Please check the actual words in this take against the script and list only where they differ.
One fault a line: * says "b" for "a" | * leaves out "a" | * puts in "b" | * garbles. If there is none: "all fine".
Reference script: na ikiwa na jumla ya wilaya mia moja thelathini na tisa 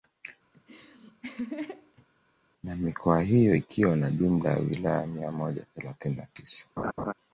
* puts in "mikoa hiyo"